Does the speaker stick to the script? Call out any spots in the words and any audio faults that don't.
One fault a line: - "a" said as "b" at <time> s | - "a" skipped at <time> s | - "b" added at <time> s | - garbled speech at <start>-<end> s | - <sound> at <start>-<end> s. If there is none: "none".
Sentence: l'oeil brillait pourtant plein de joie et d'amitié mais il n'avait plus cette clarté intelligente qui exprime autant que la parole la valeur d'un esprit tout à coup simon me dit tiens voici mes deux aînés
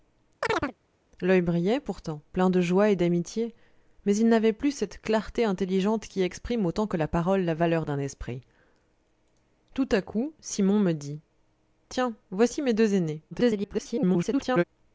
- chirp at 0.4-0.7 s
- garbled speech at 13.3-14.6 s